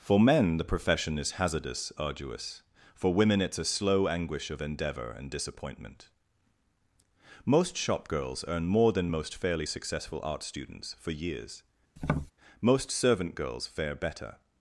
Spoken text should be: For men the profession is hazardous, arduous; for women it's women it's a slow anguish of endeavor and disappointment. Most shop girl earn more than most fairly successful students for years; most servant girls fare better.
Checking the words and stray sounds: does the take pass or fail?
fail